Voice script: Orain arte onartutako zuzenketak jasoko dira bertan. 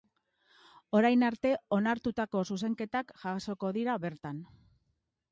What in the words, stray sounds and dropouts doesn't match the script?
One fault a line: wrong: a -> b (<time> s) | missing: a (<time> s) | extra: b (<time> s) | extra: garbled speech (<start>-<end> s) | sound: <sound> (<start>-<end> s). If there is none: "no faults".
no faults